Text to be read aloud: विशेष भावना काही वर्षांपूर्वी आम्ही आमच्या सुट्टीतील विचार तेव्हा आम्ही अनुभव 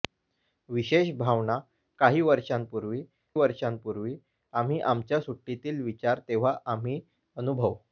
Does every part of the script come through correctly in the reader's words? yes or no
no